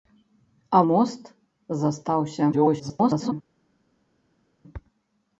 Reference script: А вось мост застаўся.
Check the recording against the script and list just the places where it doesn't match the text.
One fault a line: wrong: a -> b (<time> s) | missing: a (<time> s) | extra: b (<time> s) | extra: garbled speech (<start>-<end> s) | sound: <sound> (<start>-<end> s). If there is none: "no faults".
missing: вось (0.8 s)
extra: garbled speech (2.5-3.3 s)